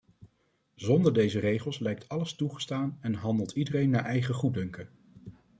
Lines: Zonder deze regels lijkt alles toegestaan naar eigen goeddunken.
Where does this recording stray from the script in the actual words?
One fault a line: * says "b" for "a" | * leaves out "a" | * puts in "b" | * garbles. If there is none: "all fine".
* puts in "en handelt iedereen"